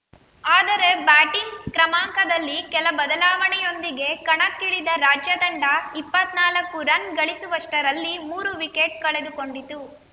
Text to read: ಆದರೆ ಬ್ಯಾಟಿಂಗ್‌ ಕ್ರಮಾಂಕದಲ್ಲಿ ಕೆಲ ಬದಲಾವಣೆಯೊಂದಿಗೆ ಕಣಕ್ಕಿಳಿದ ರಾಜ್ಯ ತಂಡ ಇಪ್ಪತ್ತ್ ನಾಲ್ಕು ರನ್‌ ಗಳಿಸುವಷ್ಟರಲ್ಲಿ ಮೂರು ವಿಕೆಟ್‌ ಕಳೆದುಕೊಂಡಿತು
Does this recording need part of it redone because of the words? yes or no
no